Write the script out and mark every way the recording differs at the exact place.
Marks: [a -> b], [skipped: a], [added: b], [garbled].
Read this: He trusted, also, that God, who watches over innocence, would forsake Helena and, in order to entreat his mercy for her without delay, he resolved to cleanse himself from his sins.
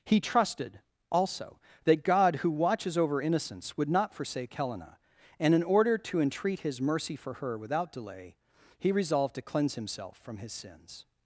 He trusted, also, that God, who watches over innocence, would [added: not] forsake Helena and, in order to entreat his mercy for her without delay, he resolved to cleanse himself from his sins.